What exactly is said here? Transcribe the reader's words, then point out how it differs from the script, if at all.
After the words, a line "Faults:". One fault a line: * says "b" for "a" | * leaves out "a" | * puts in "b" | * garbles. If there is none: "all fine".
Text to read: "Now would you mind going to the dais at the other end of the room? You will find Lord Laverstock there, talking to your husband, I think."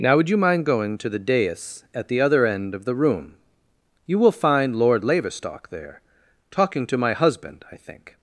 "Now would you mind going to the dais at the other end of the room? You will find Lord Laverstock there, talking to my husband, I think."
Faults:
* says "my" for "your"